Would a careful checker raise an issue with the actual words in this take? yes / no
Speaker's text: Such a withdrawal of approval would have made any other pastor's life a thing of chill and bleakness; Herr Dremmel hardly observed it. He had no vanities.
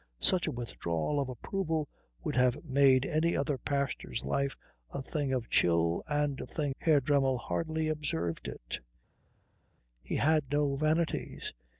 yes